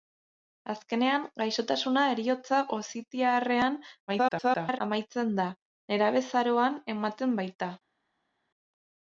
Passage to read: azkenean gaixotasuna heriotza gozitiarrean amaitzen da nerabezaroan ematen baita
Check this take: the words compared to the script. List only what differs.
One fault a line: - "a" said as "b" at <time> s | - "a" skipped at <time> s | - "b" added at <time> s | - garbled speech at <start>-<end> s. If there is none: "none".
- garbled speech at 4.1-4.8 s